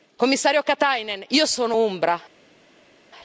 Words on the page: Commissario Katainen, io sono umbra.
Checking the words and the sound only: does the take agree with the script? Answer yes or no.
yes